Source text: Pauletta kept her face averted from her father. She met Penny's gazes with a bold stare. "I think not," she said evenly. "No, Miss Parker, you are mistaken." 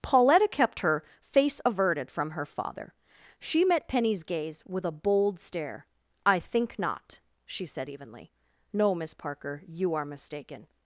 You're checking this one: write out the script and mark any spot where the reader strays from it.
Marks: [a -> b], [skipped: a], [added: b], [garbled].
Pauletta kept her face averted from her father. She met Penny's [gazes -> gaze] with a bold stare. "I think not," she said evenly. "No, Miss Parker, you are mistaken."